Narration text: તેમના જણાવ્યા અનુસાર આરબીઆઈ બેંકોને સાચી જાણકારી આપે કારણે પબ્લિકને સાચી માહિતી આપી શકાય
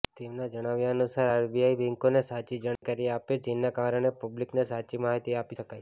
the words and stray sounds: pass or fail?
fail